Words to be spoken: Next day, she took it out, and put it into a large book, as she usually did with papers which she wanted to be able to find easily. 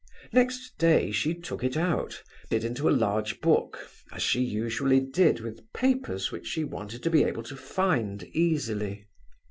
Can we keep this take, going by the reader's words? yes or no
no